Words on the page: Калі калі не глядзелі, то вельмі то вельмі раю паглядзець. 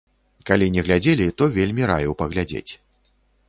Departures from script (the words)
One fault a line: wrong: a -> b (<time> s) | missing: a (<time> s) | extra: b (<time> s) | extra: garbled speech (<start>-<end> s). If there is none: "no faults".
missing: калі (0.7 s)
missing: то вельмі (1.9 s)